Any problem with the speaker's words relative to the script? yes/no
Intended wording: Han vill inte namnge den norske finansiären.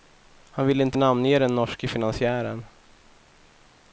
no